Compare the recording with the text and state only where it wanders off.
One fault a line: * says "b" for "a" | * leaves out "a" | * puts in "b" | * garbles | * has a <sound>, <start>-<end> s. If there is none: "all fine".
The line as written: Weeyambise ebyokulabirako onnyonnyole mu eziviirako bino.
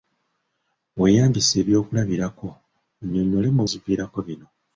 all fine